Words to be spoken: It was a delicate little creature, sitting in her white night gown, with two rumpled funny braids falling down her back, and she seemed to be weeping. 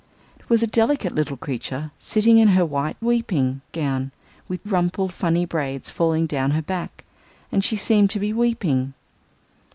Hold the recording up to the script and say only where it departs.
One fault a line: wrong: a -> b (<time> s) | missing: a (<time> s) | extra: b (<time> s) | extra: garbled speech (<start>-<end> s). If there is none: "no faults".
wrong: night -> weeping (3.0 s)
missing: two (4.6 s)